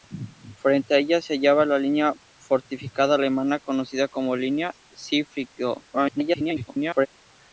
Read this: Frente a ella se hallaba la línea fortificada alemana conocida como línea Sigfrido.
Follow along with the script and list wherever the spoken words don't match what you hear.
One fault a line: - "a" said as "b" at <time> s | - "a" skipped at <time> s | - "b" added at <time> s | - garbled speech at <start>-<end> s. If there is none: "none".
- garbled speech at 5.9-7.1 s